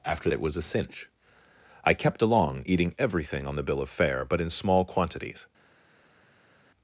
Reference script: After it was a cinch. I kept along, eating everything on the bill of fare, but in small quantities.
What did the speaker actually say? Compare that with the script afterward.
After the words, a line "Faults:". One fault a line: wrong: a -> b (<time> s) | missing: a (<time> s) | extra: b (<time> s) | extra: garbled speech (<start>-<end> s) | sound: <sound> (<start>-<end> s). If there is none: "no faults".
After it was a cinch. I kept along, eating everything on the bill of fare, but in small quantities.
Faults:
no faults